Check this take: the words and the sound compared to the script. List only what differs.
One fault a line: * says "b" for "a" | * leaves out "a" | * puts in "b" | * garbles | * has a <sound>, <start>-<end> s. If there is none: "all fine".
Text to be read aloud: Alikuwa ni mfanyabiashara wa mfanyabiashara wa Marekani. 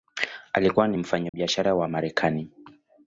* has a dropout, 1.3-1.3 s
* leaves out "mfanyabiashara wa"